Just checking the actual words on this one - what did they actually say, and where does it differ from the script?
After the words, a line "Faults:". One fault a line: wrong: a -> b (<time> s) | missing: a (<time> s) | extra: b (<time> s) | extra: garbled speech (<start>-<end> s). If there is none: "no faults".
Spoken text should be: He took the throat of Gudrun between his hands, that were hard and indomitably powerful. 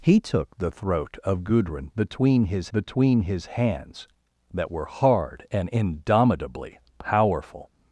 He took the throat of Gudrun between his between his hands, that were hard and indomitably powerful.
Faults:
extra: between his (2.7 s)